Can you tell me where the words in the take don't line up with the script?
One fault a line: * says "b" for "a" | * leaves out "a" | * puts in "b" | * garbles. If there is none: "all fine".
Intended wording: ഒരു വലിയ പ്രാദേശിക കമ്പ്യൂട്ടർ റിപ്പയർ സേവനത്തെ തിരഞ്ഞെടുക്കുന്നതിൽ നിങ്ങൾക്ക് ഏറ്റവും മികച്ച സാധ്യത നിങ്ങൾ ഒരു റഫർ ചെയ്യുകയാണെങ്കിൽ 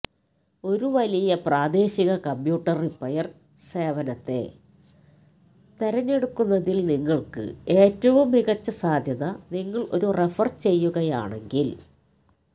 all fine